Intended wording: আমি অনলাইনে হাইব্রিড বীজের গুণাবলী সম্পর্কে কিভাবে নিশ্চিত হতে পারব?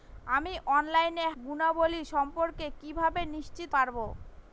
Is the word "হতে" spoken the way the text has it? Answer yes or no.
no